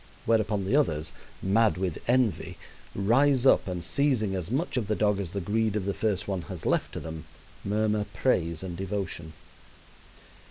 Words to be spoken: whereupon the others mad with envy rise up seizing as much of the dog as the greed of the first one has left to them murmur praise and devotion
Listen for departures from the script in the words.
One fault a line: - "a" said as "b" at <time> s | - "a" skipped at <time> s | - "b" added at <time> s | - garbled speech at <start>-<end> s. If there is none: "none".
- "and" added at 3.7 s